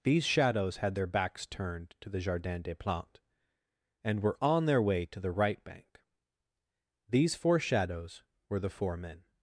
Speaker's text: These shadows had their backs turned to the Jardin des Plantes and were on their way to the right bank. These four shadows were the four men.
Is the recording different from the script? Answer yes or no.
no